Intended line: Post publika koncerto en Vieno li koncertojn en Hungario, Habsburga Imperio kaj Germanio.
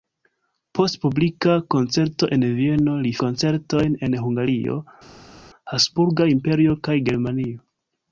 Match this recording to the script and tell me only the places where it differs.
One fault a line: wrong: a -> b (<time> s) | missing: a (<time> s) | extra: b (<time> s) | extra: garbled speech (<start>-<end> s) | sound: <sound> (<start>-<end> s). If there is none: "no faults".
no faults